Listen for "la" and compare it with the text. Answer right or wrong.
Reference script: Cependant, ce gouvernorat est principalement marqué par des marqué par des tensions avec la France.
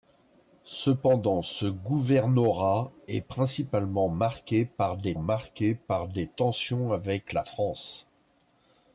right